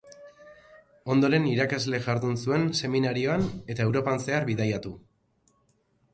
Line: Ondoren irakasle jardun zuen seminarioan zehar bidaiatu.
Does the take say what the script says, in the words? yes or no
no